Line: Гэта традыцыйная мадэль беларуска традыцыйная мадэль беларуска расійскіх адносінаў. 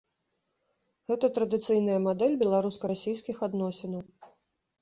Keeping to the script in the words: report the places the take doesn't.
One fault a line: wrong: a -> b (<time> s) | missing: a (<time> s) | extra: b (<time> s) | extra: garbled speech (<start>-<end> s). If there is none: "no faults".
missing: традыцыйная мадэль беларуска (2.9 s)